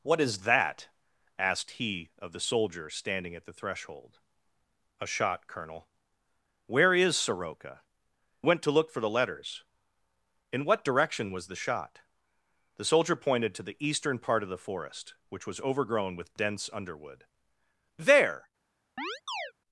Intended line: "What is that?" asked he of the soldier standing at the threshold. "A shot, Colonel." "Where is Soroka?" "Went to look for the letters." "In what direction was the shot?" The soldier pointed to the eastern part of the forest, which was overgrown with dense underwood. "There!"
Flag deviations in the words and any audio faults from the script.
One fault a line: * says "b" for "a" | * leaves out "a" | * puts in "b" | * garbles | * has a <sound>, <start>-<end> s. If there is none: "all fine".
* has a chirp, 19.0-19.5 s